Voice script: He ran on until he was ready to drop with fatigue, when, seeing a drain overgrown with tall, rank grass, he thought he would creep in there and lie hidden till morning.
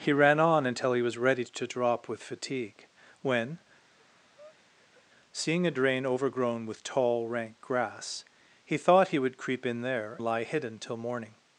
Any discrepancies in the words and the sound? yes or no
yes